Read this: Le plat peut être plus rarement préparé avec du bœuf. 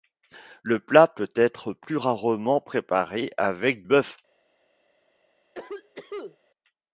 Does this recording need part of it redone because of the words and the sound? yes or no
yes